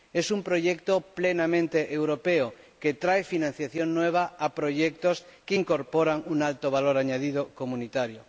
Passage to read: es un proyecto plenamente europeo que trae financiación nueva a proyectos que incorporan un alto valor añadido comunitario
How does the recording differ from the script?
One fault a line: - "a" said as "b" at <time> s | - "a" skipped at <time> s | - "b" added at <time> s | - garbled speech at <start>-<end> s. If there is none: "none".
none